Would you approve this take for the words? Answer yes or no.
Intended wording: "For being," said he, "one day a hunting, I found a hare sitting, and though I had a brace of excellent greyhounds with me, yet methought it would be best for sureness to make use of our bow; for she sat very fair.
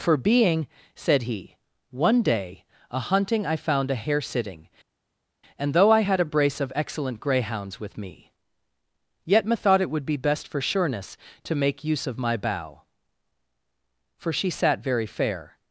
no